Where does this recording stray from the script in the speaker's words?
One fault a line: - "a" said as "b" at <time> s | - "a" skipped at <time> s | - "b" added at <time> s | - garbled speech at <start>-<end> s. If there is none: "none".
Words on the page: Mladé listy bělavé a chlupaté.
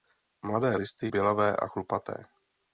none